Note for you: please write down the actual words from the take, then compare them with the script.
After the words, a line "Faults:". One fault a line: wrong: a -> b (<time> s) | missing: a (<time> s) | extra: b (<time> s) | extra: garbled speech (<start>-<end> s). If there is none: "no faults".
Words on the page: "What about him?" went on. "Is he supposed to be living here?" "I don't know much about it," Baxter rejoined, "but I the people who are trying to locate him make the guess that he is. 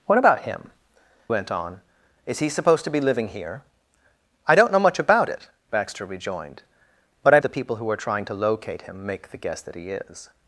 "What about him?" went on. "Is he supposed to be living here?" "I don't know much about it," Baxter rejoined, "but I the people who are trying to locate him make the guess that he is.
Faults:
no faults